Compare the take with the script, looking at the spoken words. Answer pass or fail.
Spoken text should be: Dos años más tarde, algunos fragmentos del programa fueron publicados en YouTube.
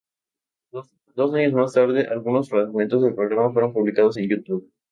pass